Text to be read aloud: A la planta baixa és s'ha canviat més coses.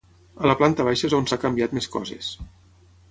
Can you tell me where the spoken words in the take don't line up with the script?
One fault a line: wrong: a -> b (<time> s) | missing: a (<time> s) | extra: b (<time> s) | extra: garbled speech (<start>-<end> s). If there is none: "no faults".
extra: on (1.2 s)